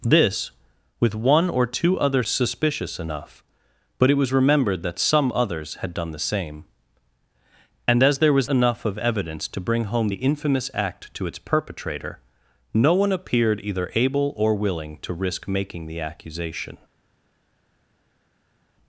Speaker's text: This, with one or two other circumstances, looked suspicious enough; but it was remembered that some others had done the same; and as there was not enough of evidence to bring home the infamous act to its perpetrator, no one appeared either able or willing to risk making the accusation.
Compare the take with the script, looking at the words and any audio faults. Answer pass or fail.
fail